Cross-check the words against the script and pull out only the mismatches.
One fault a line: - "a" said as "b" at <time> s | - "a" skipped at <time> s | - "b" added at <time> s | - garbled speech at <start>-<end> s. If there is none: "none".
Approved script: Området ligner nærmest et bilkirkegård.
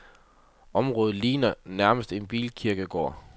- "et" said as "en" at 2.1 s